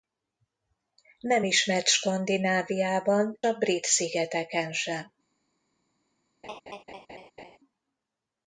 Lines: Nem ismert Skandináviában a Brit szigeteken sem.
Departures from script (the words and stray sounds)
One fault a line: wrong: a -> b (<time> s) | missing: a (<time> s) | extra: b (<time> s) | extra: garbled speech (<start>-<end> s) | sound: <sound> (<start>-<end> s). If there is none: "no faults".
sound: laugh (6.4-7.6 s)